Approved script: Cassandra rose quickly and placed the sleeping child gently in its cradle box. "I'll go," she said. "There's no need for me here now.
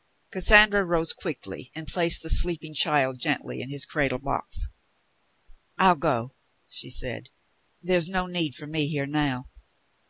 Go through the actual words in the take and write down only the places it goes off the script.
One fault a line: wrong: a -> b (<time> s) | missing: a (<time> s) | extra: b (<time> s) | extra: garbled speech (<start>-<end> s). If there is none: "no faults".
wrong: its -> his (3.7 s)